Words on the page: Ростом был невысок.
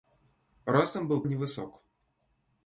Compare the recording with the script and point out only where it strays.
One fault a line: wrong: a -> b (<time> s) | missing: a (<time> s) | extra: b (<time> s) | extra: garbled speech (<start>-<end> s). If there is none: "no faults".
no faults